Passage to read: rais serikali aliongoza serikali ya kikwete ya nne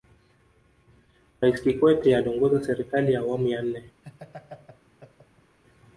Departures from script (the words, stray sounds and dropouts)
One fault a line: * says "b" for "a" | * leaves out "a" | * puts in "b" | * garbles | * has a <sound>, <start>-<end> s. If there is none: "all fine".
* says "kikwete" for "serikali"
* says "awamu" for "kikwete"
* has a laugh, 4.0-5.6 s